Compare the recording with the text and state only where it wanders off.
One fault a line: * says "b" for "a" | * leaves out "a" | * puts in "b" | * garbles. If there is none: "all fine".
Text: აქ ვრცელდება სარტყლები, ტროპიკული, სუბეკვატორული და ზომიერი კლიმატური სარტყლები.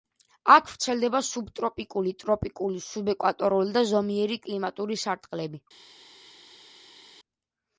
* says "სუბტროპიკული" for "სარტყლები"